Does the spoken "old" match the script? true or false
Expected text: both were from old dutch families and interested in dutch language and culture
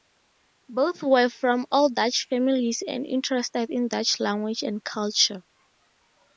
true